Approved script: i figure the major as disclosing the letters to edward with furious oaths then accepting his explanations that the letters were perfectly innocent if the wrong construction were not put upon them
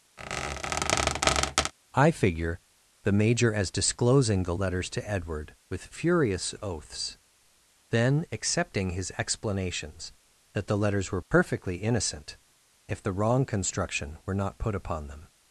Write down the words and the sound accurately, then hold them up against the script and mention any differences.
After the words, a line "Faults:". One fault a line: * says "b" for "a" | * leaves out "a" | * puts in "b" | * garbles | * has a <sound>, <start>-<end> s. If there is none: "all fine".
i figure the major as disclosing the letters to edward with furious oaths then accepting his explanations that the letters were perfectly innocent if the wrong construction were not put upon them
Faults:
* has a squeak, 0.2-1.7 s
* has a dropout, 11.2-11.3 s